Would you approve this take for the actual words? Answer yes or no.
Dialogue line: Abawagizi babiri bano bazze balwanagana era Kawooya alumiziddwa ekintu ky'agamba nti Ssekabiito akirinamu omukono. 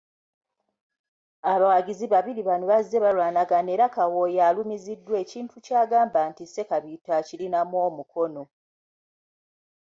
yes